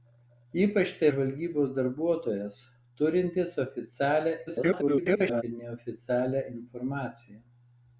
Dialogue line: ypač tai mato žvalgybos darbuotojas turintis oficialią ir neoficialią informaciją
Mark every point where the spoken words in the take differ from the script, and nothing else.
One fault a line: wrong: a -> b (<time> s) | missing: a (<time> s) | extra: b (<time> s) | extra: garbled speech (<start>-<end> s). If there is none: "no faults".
missing: mato (1.1 s)
extra: garbled speech (4.5-5.4 s)